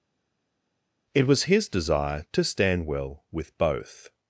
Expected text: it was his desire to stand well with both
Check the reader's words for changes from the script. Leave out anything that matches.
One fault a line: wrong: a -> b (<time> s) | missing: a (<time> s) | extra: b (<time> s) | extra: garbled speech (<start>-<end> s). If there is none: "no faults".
no faults